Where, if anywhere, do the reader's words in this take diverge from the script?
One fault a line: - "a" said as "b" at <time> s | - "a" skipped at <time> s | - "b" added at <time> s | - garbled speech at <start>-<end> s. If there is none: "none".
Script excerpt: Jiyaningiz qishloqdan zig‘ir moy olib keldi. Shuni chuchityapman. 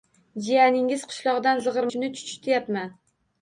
- "moy olib keldi" skipped at 1.9 s